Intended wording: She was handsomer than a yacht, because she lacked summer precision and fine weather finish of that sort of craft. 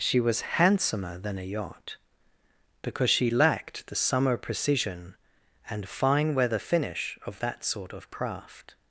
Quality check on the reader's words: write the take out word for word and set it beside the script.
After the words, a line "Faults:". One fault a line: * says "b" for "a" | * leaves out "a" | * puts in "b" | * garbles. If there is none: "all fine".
She was handsomer than a yacht, because she lacked the summer precision and fine weather finish of that sort of craft.
Faults:
* puts in "the"